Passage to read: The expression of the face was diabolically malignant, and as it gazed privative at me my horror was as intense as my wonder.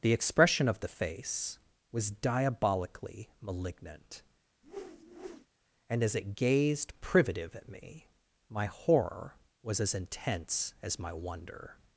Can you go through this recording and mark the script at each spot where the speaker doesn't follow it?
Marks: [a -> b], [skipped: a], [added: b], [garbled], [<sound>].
The expression of the face was diabolically malignant, [whoosh] and as it gazed privative at me my horror was as intense as my wonder.